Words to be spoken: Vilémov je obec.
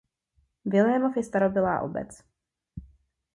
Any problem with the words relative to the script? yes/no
yes